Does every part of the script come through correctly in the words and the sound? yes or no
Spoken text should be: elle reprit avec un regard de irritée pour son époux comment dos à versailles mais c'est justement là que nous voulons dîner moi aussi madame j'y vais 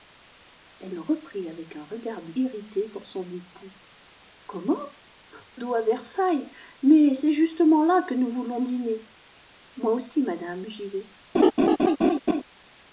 no